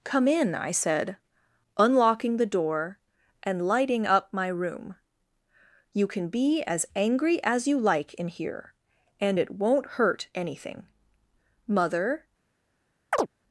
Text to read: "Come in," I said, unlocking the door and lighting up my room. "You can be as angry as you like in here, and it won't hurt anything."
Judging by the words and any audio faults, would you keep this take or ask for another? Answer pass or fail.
fail